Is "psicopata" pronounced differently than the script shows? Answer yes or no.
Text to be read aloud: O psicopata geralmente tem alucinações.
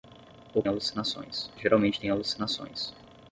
yes